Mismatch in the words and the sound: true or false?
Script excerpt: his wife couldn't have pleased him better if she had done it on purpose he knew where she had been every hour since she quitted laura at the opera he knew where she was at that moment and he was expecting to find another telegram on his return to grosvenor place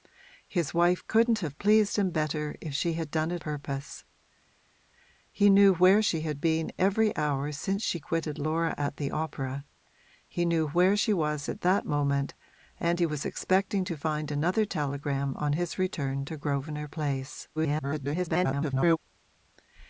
true